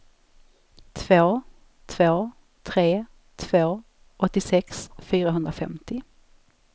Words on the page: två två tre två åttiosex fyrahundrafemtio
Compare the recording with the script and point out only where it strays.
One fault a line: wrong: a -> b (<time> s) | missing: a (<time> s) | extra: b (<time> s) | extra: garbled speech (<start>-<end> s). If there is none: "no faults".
no faults